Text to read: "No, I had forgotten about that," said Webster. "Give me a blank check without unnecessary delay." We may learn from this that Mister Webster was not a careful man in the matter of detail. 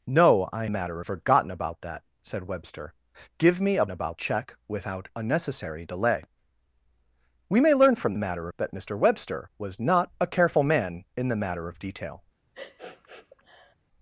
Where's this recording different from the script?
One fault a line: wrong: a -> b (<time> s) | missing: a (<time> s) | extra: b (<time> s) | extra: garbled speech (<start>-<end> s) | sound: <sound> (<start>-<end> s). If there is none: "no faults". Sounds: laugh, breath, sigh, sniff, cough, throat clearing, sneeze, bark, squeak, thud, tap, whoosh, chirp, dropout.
wrong: had -> matter (0.7 s)
wrong: blank -> about (3.9 s)
wrong: this -> matter (8.2 s)
sound: sniff (12.5-13.8 s)